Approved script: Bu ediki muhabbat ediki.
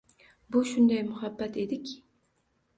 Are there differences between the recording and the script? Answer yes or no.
yes